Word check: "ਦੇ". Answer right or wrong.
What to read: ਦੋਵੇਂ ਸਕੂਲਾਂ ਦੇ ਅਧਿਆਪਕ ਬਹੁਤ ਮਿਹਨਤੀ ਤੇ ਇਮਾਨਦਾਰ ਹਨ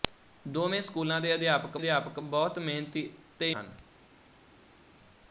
right